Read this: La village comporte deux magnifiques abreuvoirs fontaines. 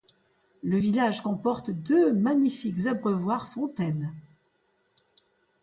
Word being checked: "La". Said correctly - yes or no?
no